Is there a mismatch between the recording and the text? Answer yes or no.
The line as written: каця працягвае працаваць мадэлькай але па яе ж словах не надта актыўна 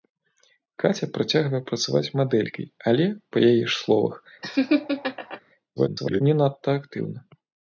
yes